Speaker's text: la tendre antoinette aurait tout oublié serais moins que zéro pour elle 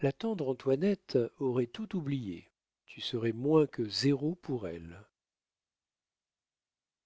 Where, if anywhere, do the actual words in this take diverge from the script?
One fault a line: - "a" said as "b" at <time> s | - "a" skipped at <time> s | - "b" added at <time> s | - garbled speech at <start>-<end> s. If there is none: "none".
- "tu" added at 2.8 s